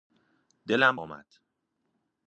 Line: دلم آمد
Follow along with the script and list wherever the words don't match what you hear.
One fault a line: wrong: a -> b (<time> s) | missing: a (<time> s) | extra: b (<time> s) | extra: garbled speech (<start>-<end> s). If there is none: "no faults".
no faults